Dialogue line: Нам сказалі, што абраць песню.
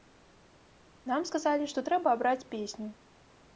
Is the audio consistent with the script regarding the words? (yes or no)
no